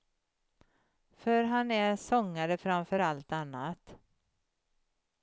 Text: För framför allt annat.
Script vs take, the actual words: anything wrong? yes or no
yes